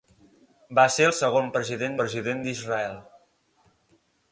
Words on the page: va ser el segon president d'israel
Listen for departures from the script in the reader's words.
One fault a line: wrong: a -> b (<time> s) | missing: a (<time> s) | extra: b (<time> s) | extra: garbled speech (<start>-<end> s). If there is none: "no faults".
extra: president (2.0 s)